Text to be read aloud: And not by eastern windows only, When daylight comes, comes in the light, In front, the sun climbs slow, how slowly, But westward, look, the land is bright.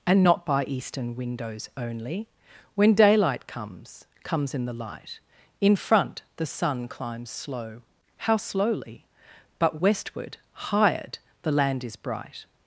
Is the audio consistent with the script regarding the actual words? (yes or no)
no